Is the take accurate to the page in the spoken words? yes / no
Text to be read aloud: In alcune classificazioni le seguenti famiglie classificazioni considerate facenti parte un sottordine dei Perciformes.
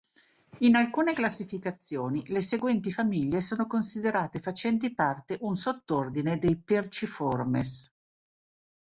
no